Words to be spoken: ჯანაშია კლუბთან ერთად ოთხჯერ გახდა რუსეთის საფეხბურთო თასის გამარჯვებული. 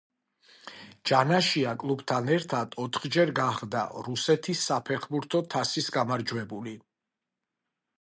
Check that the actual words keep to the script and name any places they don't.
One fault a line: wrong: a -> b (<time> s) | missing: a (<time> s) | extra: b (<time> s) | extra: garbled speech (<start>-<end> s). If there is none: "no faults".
no faults